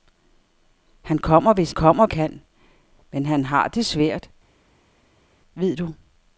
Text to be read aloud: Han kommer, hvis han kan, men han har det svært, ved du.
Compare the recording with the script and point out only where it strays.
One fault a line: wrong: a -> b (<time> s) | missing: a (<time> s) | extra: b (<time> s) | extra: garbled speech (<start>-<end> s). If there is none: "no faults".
wrong: han -> kommer (1.7 s)